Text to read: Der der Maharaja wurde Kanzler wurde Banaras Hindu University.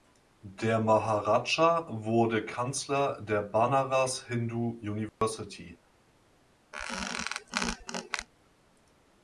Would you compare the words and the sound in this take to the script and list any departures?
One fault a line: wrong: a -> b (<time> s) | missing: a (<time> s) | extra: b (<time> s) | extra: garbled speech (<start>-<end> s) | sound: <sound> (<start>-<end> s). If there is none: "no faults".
missing: der (0.8 s)
wrong: wurde -> der (3.2 s)
sound: dropout (5.1-5.2 s)
sound: squeak (6.7-8.3 s)